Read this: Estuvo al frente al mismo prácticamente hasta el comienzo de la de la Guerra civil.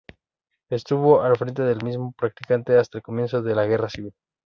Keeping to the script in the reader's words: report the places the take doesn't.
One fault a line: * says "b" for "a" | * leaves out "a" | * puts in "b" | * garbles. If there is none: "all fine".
* says "del" for "al"
* leaves out "de la"